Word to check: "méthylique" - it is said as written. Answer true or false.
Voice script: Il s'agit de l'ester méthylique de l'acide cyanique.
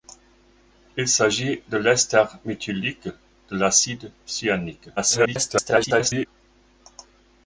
true